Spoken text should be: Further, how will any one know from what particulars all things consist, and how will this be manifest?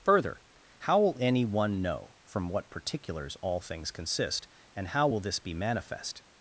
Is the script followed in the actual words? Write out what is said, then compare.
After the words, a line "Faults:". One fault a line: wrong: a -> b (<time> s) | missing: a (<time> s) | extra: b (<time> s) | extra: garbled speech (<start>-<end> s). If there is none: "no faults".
Further, how will any one know from what particulars all things consist, and how will this be manifest?
Faults:
no faults